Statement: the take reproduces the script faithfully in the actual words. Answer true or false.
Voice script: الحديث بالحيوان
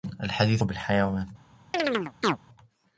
true